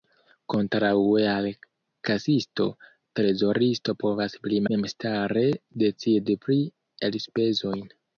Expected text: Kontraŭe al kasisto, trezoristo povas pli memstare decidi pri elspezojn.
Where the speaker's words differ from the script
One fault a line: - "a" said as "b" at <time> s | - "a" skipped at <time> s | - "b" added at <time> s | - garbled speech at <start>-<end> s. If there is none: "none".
none